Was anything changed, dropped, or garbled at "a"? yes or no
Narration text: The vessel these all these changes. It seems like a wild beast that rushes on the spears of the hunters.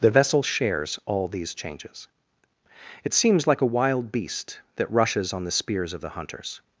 no